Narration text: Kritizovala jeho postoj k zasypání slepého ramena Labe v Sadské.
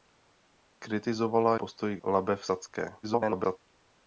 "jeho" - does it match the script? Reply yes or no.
no